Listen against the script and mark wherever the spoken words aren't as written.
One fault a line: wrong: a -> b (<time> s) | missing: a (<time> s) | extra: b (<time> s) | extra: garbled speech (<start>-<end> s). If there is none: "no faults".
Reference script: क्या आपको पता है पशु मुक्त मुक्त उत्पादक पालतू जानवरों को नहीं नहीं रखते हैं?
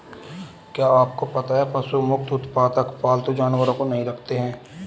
missing: मुक्त (2.3 s)
missing: नहीं (4.0 s)